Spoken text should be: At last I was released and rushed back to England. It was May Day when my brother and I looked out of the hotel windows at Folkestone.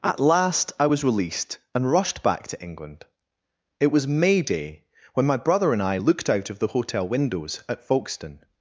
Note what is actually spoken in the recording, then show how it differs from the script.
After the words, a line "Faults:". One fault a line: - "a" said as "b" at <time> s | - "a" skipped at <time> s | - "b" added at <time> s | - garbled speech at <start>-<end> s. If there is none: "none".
At last I was released and rushed back to England. It was May Day when my brother and I looked out of the hotel windows at Folkestone.
Faults:
none